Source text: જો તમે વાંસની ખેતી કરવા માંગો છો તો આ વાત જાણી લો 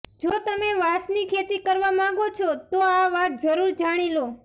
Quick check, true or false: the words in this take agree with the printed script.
false